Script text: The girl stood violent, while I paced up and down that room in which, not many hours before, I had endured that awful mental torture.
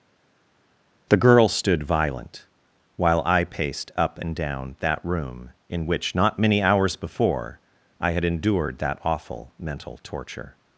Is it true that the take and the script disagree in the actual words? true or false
false